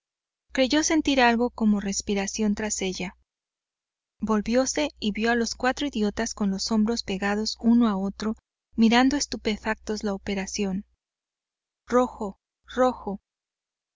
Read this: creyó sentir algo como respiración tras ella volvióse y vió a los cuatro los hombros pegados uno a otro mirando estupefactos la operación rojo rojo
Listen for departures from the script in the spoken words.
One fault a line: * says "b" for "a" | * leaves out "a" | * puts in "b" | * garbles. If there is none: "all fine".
* puts in "idiotas con"